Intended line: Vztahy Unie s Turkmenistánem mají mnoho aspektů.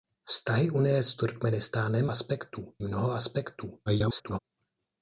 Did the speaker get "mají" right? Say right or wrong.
wrong